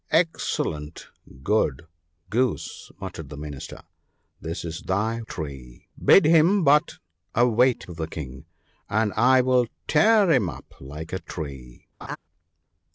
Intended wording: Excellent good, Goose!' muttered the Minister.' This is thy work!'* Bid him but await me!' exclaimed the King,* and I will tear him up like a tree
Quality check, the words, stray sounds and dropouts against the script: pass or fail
fail